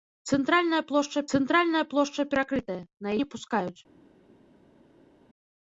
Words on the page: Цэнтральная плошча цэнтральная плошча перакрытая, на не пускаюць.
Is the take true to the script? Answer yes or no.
yes